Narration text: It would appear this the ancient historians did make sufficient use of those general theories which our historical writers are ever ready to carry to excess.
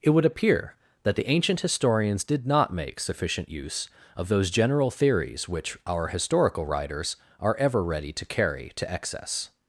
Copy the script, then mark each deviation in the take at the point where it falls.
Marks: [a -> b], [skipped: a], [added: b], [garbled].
It would appear [this -> that] the ancient historians did [added: not] make sufficient use of those general theories which our historical writers are ever ready to carry to excess.